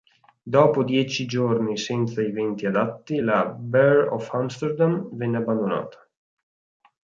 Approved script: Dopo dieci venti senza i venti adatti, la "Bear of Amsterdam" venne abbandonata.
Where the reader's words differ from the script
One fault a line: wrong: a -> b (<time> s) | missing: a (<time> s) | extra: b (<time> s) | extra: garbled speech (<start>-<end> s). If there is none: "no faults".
wrong: venti -> giorni (1.3 s)